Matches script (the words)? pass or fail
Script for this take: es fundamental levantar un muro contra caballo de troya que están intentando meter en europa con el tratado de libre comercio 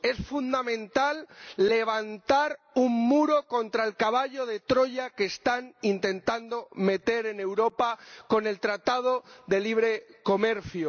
fail